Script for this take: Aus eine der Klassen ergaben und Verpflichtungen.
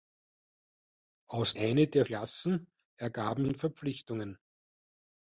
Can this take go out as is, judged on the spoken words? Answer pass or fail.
pass